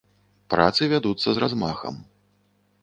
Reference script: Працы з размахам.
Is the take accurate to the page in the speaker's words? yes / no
no